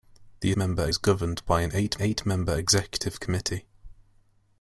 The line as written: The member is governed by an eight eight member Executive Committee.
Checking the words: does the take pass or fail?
pass